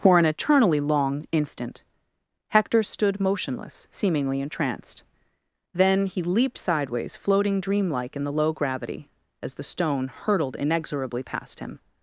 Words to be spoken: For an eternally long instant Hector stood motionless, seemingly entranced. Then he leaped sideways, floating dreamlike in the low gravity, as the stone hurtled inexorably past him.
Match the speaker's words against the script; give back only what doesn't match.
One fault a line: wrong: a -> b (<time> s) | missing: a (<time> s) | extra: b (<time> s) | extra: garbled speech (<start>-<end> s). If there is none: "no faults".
no faults